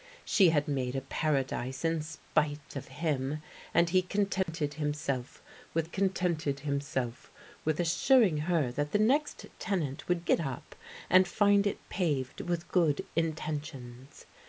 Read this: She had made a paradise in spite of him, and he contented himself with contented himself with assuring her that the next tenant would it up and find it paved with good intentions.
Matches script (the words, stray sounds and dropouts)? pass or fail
fail